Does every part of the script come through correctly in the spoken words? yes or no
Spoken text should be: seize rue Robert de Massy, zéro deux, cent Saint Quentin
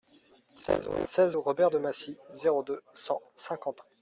no